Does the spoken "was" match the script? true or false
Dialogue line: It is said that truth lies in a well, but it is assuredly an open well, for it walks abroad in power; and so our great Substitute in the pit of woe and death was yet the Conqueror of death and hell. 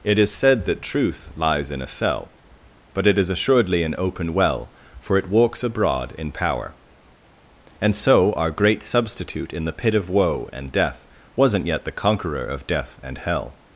false